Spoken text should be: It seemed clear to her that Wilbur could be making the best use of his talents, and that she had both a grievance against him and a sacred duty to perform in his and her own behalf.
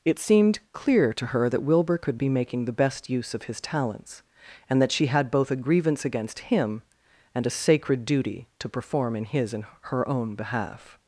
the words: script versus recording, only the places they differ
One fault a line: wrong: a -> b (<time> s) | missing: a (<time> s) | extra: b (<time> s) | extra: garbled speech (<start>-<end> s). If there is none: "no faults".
no faults